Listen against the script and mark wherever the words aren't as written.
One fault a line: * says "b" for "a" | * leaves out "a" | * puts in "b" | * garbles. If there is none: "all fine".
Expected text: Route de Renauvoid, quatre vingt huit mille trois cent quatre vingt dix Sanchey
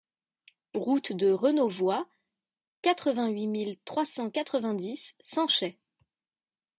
all fine